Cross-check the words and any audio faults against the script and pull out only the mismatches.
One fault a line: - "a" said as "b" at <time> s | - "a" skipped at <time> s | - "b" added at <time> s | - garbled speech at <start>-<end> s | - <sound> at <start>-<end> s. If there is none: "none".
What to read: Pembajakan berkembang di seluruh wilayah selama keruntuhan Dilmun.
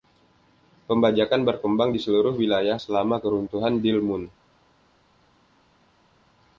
none